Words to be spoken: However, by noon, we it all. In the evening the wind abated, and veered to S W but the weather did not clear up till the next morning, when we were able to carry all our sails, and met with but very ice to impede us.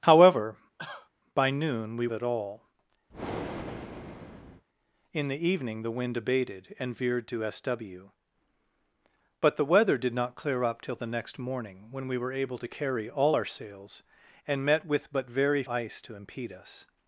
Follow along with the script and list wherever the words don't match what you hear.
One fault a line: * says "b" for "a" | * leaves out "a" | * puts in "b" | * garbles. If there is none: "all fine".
all fine